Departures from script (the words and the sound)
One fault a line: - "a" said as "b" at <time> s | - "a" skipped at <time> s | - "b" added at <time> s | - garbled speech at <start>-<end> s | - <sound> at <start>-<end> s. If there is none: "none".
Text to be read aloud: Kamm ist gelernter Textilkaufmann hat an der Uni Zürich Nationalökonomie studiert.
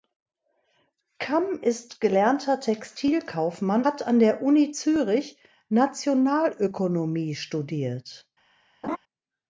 - laugh at 8.8-9.0 s